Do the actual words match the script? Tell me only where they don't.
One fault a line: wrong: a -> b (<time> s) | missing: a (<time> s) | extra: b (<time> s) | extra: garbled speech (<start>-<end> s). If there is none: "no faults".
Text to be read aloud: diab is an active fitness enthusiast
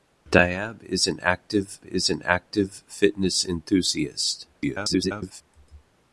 extra: is an active (1.8 s)
extra: garbled speech (4.5-5.4 s)